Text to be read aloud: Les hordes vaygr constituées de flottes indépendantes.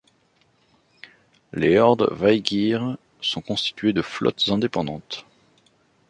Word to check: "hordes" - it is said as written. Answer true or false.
true